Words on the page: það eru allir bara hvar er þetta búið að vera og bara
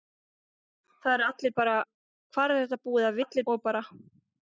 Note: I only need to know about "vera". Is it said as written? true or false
false